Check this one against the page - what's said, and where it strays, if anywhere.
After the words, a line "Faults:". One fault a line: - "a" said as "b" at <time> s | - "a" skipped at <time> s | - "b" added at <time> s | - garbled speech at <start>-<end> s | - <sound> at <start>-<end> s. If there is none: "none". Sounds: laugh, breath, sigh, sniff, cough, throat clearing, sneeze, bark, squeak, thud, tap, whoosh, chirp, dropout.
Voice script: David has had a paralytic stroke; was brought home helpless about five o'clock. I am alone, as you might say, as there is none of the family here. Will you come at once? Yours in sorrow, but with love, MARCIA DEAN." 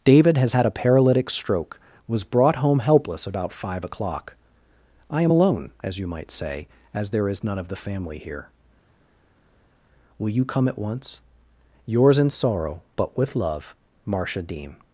David has had a paralytic stroke; was brought home helpless about five o'clock. I am alone, as you might say, as there is none of the family here. Will you come at once? Yours in sorrow, but with love, MARCIA DEAN."
Faults:
none